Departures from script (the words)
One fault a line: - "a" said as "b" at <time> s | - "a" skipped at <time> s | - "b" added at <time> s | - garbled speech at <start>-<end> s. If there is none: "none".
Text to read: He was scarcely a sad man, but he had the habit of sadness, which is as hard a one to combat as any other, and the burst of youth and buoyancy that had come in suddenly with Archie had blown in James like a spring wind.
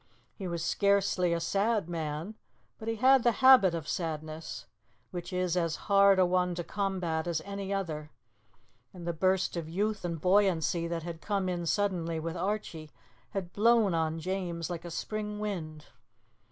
- "in" said as "on" at 13.9 s